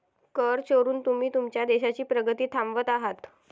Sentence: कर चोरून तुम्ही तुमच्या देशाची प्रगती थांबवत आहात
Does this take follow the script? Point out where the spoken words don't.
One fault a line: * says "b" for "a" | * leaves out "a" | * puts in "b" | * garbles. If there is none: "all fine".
all fine